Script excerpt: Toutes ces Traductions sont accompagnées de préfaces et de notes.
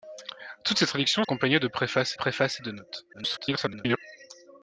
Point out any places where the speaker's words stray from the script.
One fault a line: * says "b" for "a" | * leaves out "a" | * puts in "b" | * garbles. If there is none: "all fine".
* leaves out "sont"
* puts in "préfaces"
* garbles